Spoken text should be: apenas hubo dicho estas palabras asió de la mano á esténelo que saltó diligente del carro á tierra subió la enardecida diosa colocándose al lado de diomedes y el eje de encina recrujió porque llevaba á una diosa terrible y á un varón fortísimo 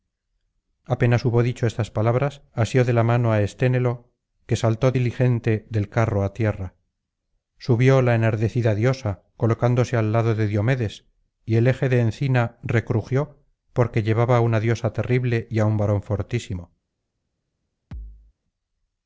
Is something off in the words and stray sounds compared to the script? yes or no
yes